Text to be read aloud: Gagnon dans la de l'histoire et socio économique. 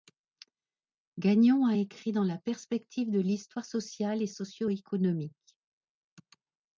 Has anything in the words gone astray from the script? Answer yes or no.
yes